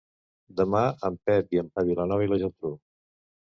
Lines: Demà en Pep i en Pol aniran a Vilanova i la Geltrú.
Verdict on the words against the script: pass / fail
fail